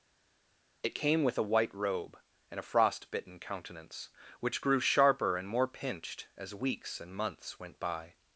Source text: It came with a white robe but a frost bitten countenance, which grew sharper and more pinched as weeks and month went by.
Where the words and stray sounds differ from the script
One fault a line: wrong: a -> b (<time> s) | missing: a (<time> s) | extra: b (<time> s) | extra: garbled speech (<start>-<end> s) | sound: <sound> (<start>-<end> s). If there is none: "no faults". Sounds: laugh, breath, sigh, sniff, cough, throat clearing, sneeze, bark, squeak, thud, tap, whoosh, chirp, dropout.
wrong: but -> and (2.5 s)
wrong: month -> months (7.2 s)